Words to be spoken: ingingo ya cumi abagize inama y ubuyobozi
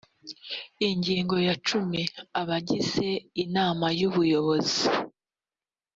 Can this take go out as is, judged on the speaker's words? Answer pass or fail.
pass